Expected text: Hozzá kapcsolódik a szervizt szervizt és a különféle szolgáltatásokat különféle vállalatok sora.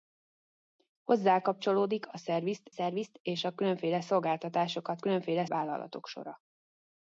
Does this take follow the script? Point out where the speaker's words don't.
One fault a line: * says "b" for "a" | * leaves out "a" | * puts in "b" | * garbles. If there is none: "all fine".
all fine